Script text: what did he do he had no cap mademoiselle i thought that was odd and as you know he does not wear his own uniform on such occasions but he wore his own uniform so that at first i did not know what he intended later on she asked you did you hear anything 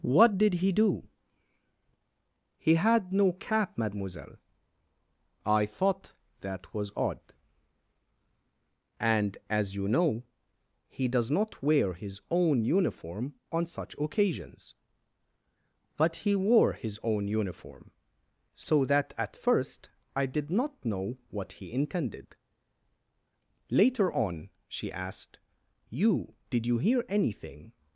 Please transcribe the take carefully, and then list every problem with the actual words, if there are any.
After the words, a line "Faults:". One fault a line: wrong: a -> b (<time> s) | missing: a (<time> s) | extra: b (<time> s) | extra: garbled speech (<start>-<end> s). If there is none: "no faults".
what did he do he had no cap mademoiselle i thought that was odd and as you know he does not wear his own uniform on such occasions but he wore his own uniform so that at first i did not know what he intended later on she asked you did you hear anything
Faults:
no faults